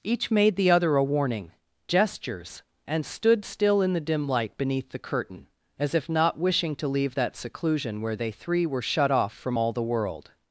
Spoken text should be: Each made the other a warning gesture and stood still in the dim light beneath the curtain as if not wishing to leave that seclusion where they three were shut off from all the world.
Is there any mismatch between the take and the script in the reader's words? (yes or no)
yes